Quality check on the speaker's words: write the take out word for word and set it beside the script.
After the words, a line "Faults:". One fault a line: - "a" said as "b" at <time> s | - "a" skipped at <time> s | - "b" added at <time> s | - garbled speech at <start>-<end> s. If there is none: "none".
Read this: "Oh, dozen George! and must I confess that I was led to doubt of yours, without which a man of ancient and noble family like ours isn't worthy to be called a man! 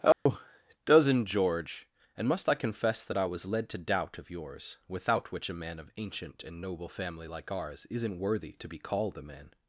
"Oh, dozen George! and must I confess that I was led to doubt of yours, without which a man of ancient and noble family like ours isn't worthy to be called a man!
Faults:
none